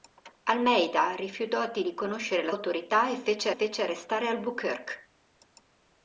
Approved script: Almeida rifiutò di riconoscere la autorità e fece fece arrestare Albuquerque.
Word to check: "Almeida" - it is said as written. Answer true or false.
true